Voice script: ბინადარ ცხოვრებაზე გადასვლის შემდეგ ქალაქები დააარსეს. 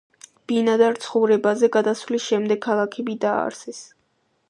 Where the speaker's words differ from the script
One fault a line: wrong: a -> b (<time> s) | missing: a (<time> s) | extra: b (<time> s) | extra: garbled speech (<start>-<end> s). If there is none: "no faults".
no faults